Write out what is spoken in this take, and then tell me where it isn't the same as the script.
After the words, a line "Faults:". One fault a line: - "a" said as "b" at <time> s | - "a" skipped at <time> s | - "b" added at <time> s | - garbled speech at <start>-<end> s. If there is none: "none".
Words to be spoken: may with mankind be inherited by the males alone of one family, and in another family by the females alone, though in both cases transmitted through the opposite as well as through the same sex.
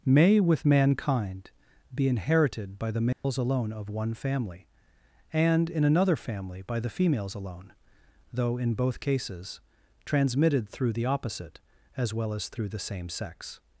may with mankind be inherited by the males alone of one family, and in another family by the females alone, though in both cases transmitted through the opposite as well as through the same sex.
Faults:
none